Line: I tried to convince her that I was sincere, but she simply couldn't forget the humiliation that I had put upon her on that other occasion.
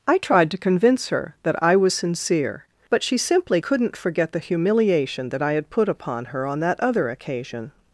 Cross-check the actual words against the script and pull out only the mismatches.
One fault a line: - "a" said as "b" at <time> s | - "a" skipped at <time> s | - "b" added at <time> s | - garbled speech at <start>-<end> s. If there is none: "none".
none